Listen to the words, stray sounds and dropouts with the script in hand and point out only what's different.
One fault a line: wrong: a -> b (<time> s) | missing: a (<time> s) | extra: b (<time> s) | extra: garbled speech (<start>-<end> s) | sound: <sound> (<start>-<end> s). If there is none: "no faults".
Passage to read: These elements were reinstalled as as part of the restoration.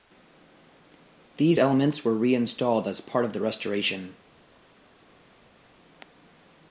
missing: as (3.0 s)